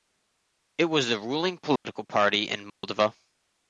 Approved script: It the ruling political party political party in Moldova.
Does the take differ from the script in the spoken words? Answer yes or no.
yes